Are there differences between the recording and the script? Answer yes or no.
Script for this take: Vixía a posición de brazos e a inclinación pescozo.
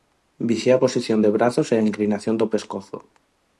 yes